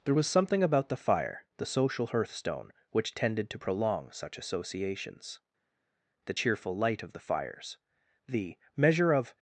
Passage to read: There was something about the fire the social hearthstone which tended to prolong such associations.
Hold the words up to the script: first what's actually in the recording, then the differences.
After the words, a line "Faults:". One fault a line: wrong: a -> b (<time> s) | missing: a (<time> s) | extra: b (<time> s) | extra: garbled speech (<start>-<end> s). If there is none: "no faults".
There was something about the fire the social hearthstone which tended to prolong such associations. The cheerful light of the fires; the measure of
Faults:
extra: The cheerful light of the fires the measure of (6.3 s)